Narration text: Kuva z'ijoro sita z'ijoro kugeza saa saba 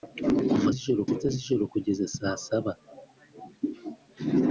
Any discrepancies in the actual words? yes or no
no